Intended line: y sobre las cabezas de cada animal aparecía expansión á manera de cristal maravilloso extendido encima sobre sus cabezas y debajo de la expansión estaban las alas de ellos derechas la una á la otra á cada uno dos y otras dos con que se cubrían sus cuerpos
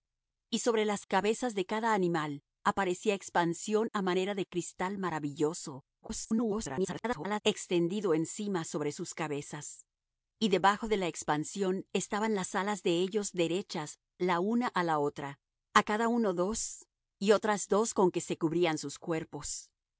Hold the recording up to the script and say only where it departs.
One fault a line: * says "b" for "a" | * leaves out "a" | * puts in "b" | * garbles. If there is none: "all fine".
* garbles